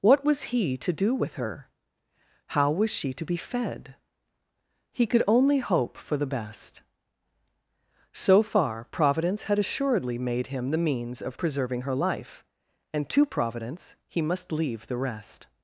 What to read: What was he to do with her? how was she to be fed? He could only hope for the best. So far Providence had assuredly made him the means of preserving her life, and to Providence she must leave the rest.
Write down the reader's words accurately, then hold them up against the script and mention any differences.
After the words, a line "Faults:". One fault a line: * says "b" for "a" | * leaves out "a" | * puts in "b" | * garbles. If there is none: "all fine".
What was he to do with her? how was she to be fed? He could only hope for the best. So far Providence had assuredly made him the means of preserving her life, and to Providence he must leave the rest.
Faults:
* says "he" for "she"